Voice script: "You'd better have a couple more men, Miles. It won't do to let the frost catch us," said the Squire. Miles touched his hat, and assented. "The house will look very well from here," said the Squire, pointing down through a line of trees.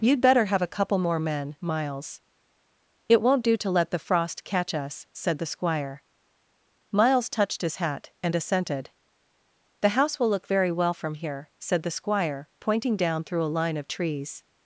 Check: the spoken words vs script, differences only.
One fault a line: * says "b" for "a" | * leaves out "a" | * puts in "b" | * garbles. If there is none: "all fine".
all fine